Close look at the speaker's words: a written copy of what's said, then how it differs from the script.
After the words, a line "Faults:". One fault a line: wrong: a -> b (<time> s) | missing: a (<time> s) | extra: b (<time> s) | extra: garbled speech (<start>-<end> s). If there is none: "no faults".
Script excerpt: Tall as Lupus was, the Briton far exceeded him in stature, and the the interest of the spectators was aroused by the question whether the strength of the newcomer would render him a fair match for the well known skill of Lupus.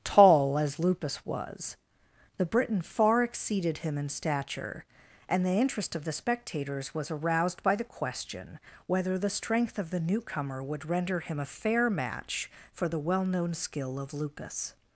Tall as Lupus was, the Briton far exceeded him in stature, and the interest of the spectators was aroused by the question whether the strength of the newcomer would render him a fair match for the well known skill of Lupus.
Faults:
missing: the (5.6 s)